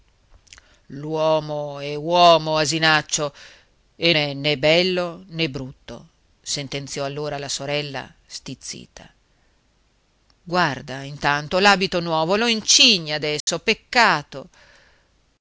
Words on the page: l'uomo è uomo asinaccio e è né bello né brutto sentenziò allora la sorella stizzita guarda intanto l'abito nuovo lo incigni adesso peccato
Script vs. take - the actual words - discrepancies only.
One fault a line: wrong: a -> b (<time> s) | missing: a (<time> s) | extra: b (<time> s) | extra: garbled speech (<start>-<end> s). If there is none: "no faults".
no faults